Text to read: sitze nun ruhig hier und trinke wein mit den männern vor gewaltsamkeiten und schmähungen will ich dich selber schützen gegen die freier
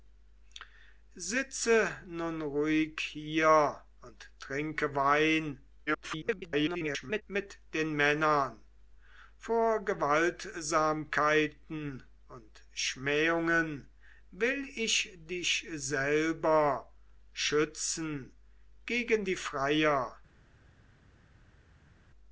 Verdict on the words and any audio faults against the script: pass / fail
fail